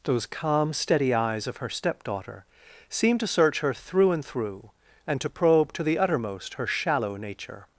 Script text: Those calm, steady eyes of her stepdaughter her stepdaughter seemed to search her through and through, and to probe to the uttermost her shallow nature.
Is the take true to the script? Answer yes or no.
no